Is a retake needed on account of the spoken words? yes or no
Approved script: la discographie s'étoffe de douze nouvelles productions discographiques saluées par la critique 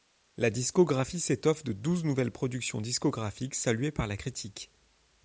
no